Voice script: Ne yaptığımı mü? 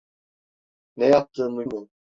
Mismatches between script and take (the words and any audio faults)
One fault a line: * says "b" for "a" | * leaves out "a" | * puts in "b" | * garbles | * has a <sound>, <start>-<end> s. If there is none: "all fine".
all fine